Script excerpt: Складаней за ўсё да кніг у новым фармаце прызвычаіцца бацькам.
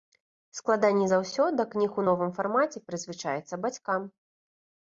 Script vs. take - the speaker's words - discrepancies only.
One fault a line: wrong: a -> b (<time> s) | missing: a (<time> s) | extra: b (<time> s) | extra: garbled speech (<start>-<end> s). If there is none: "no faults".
no faults